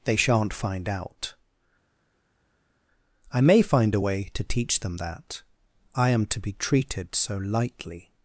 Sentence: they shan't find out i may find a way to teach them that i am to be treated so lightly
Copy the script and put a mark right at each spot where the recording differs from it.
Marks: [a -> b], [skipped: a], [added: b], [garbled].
they shan't find out i may find a way to teach them that i am to be treated so lightly